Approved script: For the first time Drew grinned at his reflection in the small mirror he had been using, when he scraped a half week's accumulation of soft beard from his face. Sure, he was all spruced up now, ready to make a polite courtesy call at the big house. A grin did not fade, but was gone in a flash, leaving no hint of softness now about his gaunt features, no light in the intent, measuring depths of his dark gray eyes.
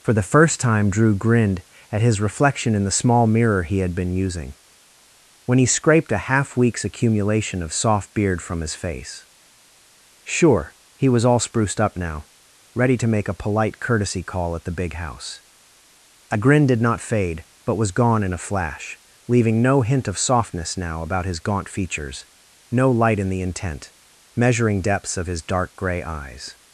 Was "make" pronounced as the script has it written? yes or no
yes